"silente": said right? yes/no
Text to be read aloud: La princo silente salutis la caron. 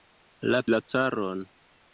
no